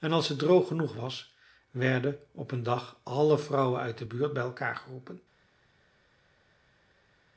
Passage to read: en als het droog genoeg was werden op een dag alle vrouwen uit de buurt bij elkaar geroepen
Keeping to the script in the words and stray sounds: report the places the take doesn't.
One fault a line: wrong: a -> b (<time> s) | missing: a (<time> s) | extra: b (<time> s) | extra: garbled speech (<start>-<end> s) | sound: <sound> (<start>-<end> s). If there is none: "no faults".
no faults